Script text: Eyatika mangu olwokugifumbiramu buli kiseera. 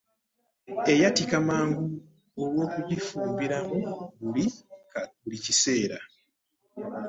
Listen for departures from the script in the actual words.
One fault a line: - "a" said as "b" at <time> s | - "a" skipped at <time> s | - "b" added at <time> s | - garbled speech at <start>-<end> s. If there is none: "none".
none